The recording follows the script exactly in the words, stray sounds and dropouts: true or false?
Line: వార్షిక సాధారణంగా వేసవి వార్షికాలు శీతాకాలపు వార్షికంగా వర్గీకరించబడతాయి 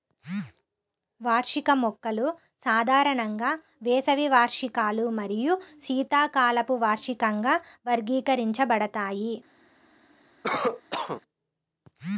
false